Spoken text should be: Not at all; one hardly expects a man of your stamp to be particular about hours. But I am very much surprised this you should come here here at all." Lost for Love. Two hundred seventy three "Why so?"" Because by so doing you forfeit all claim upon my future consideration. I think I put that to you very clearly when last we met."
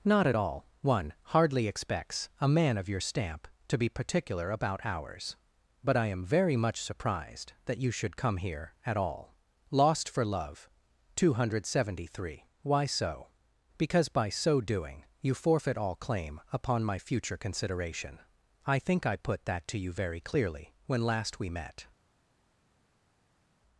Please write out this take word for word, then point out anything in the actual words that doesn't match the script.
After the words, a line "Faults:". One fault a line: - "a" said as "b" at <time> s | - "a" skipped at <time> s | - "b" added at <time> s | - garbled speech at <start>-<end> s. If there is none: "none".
Not at all; one hardly expects a man of your stamp to be particular about hours. But I am very much surprised that you should come here at all." Lost for Love. Two hundred seventy three "Why so?"" Because by so doing you forfeit all claim upon my future consideration. I think I put that to you very clearly when last we met."
Faults:
- "this" said as "that" at 7.6 s
- "here" skipped at 8.8 s